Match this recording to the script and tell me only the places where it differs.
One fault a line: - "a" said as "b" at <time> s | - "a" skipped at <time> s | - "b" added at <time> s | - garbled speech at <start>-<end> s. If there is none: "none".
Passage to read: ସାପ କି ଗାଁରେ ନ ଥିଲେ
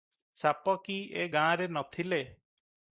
- "ଏ" added at 1.2 s